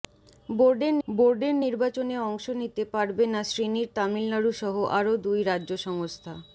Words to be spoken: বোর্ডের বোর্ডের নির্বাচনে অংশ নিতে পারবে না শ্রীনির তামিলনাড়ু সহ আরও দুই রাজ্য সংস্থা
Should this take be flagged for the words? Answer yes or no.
no